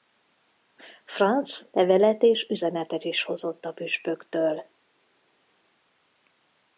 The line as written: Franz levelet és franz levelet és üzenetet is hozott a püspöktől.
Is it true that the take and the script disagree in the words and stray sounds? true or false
true